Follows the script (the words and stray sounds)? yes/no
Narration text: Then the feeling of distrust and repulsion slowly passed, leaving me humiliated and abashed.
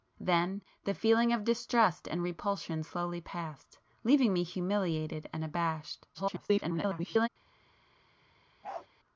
no